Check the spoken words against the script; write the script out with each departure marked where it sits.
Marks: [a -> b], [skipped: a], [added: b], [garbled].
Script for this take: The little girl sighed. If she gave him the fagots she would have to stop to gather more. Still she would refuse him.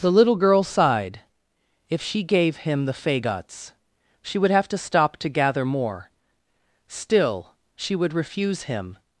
The little girl sighed. If she gave him the fagots she would have to stop to gather more. Still she would refuse him.